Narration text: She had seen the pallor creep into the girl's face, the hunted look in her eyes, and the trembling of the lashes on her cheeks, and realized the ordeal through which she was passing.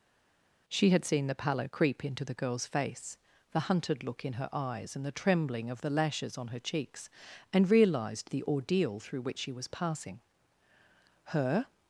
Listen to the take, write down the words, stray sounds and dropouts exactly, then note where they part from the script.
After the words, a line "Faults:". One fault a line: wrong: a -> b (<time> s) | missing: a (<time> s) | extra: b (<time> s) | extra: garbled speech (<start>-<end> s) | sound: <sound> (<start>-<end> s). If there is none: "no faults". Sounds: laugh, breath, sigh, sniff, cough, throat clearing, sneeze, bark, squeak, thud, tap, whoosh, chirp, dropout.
She had seen the pallor creep into the girl's face, the hunted look in her eyes, and the trembling of the lashes on her cheeks, and realized the ordeal through which she was passing. Her
Faults:
extra: Her (11.3 s)